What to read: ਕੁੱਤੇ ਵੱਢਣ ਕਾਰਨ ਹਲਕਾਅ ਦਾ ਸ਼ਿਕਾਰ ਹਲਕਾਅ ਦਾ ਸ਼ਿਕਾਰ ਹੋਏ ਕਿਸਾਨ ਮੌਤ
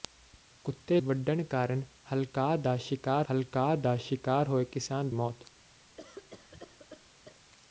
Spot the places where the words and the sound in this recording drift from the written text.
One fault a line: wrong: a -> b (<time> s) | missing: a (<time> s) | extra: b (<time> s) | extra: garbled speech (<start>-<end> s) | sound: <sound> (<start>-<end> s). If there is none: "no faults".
sound: cough (6.0-7.4 s)